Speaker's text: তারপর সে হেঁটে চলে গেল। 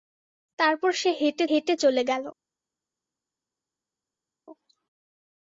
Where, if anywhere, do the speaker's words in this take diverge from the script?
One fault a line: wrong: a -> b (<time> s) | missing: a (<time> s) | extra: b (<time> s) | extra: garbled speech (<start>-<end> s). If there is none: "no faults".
extra: হেঁটে (1.5 s)